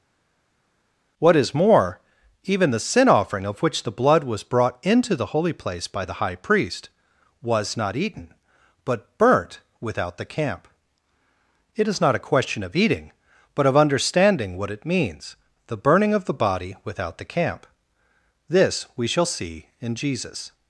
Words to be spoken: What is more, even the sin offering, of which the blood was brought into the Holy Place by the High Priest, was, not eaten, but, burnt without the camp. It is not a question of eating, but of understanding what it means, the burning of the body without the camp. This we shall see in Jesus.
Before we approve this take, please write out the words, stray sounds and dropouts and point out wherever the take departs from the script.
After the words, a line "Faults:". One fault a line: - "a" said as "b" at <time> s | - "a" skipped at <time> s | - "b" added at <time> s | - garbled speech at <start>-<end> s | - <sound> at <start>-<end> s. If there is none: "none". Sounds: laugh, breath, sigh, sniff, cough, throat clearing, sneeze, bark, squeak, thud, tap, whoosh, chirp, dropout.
What is more, even the sin offering, of which the blood was brought into the Holy Place by the High Priest, was, not eaten, but, burnt without the camp. It is not a question of eating, but of understanding what it means, the burning of the body without the camp. This we shall see in Jesus.
Faults:
none